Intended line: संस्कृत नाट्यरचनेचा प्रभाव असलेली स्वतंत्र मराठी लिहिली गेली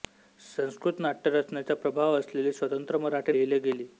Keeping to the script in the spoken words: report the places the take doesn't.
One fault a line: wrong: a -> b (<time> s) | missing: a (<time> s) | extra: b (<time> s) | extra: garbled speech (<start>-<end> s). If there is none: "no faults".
no faults